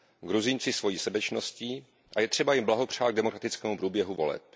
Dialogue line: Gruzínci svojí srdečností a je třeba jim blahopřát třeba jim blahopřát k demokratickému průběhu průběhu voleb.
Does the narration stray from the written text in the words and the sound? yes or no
yes